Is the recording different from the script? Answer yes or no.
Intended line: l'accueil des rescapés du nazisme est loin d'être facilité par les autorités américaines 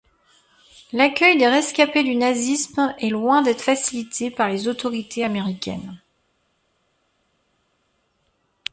no